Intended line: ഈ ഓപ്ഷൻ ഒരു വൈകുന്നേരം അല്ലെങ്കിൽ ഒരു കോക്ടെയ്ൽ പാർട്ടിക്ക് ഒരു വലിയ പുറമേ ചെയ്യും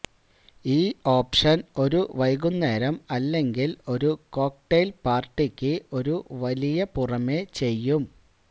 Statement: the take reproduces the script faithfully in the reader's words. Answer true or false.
true